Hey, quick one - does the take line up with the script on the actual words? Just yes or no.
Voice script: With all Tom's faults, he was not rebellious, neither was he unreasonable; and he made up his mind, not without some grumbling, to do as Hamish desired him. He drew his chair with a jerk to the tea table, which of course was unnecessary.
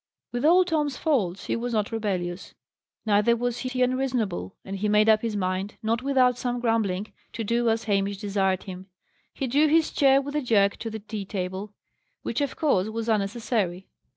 no